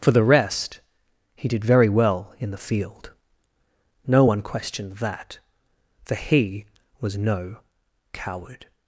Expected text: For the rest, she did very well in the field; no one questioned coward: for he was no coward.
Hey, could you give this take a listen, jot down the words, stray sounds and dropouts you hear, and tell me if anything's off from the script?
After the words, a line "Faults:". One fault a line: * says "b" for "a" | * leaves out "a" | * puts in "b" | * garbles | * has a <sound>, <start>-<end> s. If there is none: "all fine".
For the rest, he did very well in the field; no one questioned that: for he was no coward.
Faults:
* says "he" for "she"
* says "that" for "coward"